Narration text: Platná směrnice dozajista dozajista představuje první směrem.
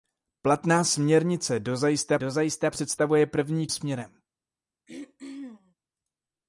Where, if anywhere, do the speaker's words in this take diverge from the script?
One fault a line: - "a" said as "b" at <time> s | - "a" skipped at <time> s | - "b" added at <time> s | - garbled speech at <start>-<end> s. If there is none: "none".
none